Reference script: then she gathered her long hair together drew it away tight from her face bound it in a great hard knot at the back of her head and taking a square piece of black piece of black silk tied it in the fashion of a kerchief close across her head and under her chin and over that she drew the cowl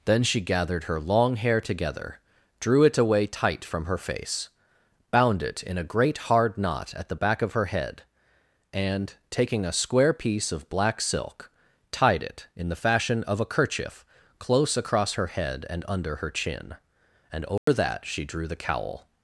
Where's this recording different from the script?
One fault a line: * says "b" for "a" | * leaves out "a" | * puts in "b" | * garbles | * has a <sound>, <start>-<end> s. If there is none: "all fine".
* leaves out "piece of black"
* has a dropout, 17.6-17.7 s